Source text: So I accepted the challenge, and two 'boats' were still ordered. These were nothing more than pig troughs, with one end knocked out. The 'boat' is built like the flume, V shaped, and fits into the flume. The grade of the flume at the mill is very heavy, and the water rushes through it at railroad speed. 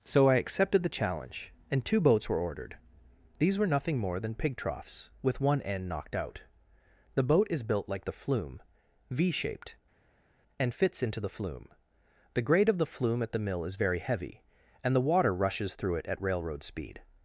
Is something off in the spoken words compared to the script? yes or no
yes